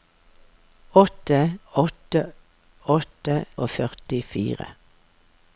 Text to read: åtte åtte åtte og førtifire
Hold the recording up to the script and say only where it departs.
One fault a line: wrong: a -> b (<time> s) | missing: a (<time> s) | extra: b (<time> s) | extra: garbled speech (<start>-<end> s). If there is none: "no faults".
no faults